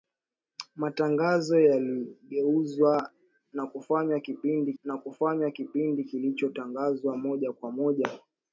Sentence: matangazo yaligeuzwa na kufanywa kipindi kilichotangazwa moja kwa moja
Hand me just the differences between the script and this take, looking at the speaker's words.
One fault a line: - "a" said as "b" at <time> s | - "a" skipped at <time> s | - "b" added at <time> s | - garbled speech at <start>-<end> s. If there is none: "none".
- "na kufanywa kipindi" added at 4.8 s